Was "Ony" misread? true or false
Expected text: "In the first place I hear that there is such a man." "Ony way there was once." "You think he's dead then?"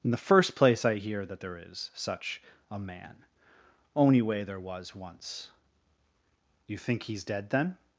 true